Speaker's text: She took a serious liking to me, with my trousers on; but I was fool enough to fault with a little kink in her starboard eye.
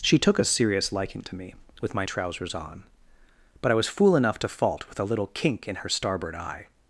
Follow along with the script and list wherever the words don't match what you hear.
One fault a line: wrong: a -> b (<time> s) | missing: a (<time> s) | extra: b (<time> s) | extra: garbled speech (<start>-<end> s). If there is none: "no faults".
no faults